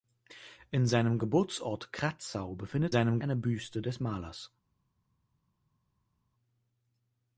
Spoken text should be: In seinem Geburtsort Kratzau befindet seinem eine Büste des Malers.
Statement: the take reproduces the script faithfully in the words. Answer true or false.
true